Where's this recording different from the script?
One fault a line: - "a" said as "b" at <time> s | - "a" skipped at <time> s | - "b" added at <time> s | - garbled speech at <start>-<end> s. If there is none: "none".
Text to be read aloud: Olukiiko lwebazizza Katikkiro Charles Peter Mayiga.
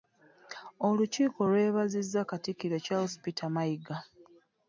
none